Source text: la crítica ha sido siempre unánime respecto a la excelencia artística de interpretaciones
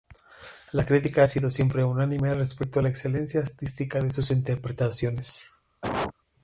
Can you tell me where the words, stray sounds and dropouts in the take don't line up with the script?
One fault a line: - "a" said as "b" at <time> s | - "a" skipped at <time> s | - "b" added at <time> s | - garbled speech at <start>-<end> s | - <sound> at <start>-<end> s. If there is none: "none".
- "sus" added at 4.1 s
- cough at 5.8-6.1 s